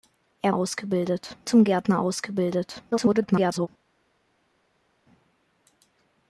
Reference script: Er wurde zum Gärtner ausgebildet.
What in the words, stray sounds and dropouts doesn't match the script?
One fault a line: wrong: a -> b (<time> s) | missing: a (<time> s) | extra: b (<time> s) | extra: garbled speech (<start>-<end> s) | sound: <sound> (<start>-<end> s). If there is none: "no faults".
wrong: wurde -> ausgebildet (0.5 s)
extra: garbled speech (2.9-3.7 s)